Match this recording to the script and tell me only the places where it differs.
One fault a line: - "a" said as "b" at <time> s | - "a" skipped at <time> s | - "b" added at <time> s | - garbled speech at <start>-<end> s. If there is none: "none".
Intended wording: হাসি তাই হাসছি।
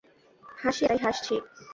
none